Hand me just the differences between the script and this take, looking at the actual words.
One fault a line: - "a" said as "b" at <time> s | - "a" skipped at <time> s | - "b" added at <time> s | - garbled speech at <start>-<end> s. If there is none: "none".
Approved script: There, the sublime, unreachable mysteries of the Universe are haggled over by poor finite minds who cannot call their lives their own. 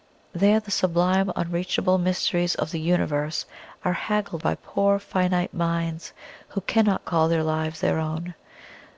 - "over" skipped at 4.4 s